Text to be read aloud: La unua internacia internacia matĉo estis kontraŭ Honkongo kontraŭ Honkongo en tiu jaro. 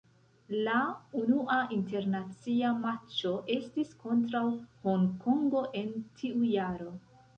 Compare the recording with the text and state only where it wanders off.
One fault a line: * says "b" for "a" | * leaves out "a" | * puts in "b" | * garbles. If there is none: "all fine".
* leaves out "internacia"
* leaves out "kontraŭ Honkongo"